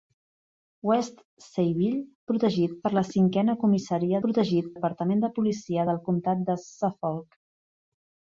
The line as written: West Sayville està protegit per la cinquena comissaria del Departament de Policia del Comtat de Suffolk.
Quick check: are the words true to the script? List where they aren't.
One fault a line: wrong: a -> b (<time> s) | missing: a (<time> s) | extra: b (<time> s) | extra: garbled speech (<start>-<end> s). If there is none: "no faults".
missing: està (2.0 s)
wrong: del -> protegit (4.3 s)